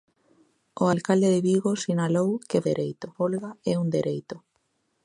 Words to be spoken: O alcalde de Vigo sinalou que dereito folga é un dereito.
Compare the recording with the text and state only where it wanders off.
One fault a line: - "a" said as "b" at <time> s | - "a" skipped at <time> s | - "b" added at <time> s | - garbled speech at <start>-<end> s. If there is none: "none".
none